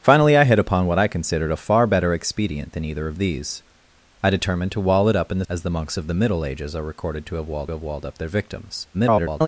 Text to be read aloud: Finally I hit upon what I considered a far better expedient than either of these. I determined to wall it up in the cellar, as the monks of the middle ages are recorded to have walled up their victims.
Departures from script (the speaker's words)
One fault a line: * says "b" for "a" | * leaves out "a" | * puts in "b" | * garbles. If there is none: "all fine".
* leaves out "cellar"
* puts in "have walled"
* garbles